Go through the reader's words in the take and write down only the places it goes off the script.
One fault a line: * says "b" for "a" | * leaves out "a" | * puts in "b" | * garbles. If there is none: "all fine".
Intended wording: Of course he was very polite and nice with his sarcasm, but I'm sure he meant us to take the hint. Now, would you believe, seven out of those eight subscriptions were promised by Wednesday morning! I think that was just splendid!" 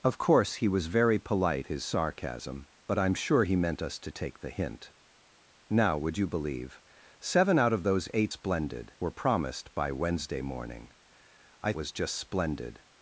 * leaves out "and nice with"
* says "splendid" for "subscriptions"
* leaves out "think that"